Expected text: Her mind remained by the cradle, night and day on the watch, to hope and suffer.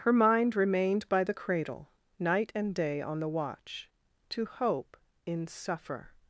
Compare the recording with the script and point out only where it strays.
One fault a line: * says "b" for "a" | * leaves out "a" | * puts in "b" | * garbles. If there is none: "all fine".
* says "in" for "and"